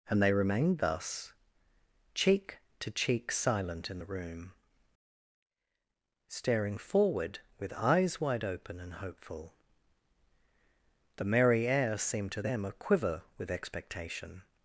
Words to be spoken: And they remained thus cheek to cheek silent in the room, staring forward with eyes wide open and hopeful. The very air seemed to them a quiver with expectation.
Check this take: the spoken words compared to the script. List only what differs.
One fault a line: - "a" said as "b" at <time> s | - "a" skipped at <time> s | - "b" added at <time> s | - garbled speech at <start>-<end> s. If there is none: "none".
- "very" said as "merry" at 11.2 s